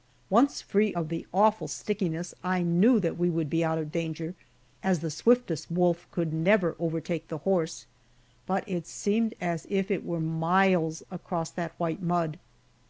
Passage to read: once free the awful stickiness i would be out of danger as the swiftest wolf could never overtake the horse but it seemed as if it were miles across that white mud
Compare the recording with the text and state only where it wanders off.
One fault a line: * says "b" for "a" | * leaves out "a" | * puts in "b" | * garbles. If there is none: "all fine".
* puts in "of"
* puts in "knew that we"